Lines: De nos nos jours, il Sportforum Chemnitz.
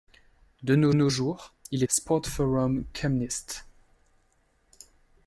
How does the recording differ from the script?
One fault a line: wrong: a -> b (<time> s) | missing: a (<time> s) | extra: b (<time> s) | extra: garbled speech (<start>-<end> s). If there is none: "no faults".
no faults